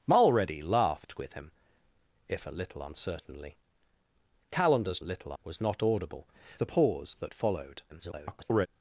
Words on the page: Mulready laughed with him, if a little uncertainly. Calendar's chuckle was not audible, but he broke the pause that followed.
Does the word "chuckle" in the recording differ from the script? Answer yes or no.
yes